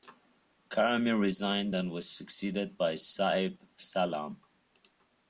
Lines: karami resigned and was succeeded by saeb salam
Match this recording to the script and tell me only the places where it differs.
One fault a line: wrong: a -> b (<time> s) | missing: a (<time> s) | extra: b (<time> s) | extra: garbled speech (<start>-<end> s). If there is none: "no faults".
no faults